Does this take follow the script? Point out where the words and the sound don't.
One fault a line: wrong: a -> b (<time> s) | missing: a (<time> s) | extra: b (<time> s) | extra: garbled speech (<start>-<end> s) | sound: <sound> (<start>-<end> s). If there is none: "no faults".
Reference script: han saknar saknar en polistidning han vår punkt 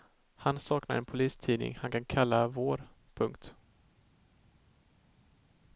missing: saknar (0.9 s)
extra: kan kalla (1.9 s)